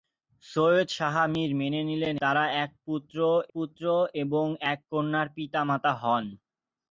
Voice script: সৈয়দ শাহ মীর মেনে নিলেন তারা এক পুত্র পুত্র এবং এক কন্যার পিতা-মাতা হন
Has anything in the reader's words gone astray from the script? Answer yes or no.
no